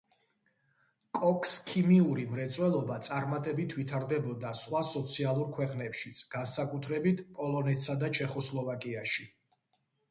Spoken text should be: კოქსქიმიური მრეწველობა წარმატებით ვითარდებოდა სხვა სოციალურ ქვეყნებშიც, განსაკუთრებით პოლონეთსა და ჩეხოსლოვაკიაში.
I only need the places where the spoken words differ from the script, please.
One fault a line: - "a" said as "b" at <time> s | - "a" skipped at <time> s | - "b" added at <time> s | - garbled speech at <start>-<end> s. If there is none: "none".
none